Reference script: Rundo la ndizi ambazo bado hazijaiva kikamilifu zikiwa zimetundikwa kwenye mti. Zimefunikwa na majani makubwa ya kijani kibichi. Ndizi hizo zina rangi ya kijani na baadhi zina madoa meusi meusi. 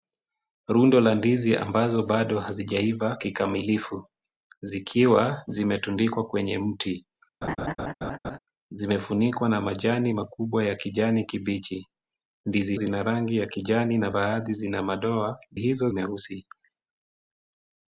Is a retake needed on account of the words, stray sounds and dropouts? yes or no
yes